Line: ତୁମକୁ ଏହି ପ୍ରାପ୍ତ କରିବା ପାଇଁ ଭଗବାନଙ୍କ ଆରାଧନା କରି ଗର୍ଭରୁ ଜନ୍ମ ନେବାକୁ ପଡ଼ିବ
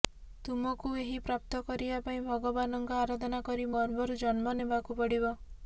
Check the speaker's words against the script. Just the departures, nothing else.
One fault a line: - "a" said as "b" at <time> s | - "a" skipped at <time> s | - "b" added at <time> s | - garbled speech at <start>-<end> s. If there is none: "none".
none